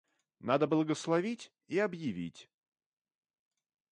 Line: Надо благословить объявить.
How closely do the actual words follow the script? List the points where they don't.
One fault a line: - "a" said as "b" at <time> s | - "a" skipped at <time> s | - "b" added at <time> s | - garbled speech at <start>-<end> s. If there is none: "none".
- "и" added at 1.7 s